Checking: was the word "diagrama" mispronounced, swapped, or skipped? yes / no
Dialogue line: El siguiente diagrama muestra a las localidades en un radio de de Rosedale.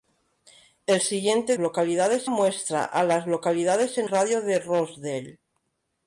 yes